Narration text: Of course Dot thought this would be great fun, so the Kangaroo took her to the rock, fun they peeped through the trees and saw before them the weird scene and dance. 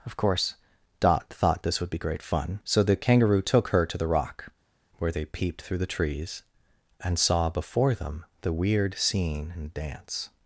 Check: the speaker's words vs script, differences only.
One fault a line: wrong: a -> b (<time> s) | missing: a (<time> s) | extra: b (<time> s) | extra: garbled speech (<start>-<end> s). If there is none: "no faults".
wrong: fun -> where (5.0 s)